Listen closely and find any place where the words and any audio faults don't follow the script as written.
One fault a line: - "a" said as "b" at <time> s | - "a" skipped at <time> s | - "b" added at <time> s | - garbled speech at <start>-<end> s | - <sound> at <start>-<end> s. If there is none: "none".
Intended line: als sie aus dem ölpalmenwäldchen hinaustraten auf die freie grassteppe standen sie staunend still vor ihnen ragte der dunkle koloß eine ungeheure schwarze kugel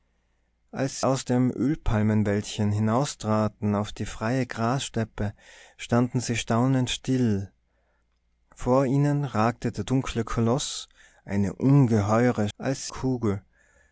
- "sie" skipped at 1.0 s
- "schwarze" said as "als" at 12.6 s